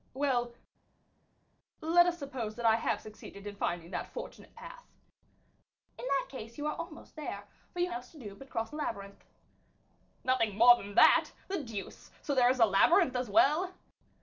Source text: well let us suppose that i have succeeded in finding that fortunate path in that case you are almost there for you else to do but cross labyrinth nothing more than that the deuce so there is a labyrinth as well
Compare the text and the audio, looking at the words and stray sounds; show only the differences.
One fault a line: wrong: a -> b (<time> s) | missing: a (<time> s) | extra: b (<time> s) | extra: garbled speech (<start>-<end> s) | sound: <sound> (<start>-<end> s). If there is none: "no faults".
no faults